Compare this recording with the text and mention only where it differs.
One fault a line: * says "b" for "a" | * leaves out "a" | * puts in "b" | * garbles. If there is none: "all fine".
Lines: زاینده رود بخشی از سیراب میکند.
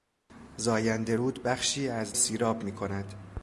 all fine